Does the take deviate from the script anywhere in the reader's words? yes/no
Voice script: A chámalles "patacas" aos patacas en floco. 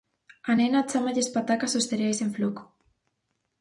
yes